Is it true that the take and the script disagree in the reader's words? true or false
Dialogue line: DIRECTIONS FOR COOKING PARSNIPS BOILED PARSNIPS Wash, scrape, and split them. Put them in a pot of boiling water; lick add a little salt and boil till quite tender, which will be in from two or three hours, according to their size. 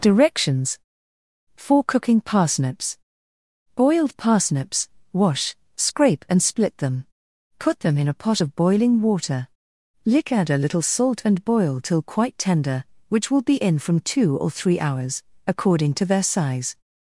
false